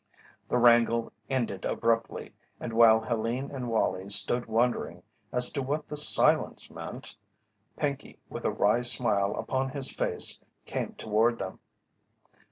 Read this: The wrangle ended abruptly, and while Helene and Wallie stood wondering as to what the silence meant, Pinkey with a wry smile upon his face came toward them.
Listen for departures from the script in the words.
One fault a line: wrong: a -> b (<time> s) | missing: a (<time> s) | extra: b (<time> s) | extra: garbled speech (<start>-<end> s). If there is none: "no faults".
no faults